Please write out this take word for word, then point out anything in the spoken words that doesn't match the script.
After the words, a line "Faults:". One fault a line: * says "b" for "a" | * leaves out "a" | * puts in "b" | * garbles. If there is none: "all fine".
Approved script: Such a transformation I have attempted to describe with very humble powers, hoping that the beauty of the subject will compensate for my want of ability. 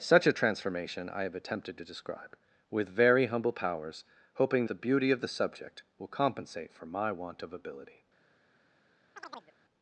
Such a transformation I have attempted to describe with very humble powers, hoping the beauty of the subject will compensate for my want of ability.
Faults:
* leaves out "that"